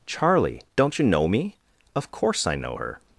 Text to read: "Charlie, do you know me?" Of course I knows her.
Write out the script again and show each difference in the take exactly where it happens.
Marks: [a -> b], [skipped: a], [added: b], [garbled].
"Charlie, [do -> don't] you know me?" Of course I [knows -> know] her.